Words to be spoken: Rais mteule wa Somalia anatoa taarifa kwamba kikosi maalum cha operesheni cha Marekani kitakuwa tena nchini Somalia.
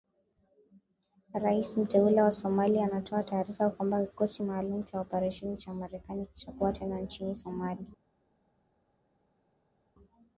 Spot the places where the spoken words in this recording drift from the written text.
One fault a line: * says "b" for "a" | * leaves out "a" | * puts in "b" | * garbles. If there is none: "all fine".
all fine